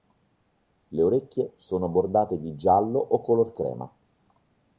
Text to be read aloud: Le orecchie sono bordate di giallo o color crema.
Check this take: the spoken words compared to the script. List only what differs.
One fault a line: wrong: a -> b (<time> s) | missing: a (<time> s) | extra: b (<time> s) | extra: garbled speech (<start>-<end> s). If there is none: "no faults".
no faults